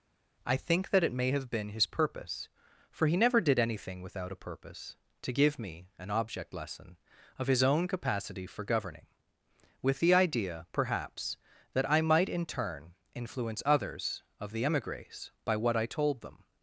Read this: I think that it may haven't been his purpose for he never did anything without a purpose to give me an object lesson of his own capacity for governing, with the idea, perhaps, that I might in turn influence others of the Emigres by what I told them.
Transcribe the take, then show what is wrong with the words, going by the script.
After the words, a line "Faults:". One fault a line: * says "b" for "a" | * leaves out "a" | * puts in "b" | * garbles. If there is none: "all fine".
I think that it may have been his purpose for he never did anything without a purpose to give me an object lesson of his own capacity for governing, with the idea, perhaps, that I might in turn influence others of the Emigres by what I told them.
Faults:
* says "have" for "haven't"